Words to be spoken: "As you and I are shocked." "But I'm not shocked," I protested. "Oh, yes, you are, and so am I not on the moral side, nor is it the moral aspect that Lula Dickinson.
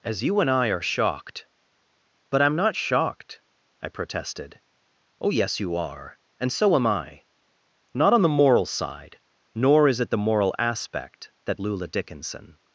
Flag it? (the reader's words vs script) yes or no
no